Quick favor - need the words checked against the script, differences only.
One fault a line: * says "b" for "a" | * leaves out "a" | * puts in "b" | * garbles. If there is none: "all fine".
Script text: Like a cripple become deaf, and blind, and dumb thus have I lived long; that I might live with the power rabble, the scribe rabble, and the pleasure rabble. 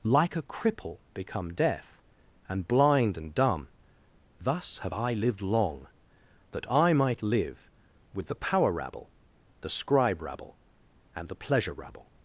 all fine